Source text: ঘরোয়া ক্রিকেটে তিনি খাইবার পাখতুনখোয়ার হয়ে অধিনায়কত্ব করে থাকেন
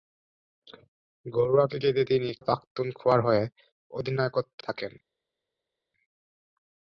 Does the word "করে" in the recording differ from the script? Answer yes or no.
yes